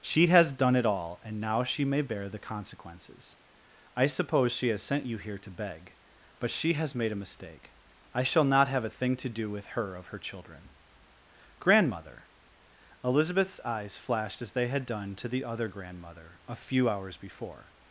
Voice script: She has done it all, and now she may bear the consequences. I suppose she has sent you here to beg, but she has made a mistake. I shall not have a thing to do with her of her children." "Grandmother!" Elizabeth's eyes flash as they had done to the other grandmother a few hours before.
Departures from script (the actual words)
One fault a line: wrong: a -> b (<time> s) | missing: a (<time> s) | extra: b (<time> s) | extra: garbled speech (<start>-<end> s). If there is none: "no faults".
wrong: flash -> flashed (14.0 s)